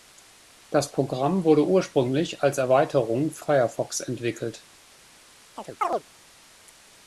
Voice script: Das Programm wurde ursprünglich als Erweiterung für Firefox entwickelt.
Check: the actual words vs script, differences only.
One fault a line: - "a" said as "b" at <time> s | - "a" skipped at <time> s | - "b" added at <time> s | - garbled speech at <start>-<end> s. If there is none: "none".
none